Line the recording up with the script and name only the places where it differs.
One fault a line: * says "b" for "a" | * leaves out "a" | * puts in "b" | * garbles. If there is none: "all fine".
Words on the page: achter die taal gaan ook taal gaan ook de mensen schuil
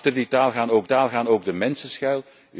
all fine